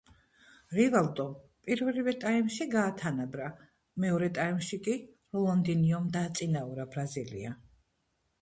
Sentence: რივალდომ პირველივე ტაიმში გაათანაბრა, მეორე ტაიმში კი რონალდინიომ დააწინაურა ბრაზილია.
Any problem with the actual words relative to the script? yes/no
no